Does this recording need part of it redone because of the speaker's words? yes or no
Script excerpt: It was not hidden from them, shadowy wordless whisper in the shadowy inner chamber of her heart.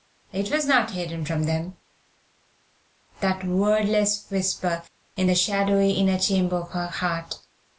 yes